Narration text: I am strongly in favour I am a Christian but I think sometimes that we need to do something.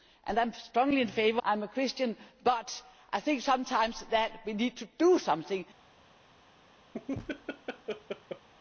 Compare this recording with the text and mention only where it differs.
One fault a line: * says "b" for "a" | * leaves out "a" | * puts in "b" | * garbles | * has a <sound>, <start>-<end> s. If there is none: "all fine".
* has a laugh, 6.9-8.5 s